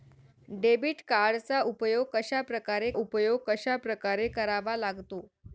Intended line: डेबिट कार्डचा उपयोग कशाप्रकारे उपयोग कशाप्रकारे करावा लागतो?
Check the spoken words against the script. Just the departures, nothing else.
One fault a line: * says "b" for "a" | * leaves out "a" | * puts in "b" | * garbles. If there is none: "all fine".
all fine